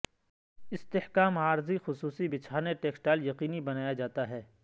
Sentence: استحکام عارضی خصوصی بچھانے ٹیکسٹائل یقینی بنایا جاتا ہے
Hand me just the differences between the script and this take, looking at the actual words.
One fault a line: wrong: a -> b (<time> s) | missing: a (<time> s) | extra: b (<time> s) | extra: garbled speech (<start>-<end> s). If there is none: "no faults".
no faults